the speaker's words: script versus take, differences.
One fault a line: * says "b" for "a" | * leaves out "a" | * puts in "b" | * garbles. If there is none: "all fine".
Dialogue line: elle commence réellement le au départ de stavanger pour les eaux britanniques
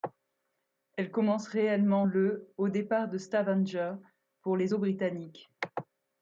all fine